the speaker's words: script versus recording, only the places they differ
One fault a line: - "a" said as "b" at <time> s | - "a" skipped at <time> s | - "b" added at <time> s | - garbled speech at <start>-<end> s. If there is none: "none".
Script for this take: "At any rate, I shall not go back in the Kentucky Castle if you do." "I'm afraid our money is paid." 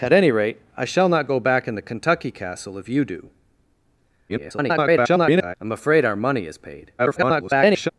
- garbled speech at 4.3-5.6 s
- garbled speech at 7.0-7.9 s